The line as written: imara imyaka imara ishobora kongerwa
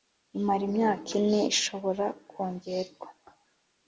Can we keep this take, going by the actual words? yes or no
no